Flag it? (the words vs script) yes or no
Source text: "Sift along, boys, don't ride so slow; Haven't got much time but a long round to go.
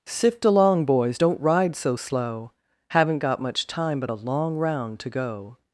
no